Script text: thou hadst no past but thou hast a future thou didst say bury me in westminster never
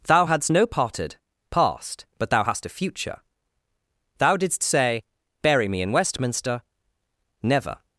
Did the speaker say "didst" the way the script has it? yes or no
yes